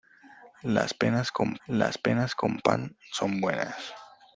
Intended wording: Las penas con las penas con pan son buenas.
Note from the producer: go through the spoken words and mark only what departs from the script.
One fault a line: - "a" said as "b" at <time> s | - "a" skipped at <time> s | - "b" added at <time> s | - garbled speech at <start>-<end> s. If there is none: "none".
none